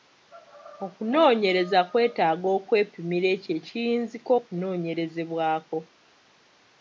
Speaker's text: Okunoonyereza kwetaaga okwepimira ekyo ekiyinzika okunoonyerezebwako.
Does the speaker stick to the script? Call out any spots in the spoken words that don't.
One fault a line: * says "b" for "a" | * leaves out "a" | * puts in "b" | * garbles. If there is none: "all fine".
all fine